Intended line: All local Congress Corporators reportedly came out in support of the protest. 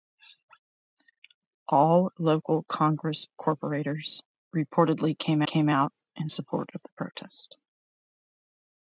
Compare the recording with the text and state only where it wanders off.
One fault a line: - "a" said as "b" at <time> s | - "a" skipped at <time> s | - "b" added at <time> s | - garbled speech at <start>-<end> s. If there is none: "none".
- "came" added at 5.4 s